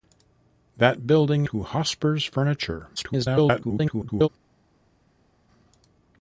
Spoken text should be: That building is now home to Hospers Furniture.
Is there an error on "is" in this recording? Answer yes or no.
yes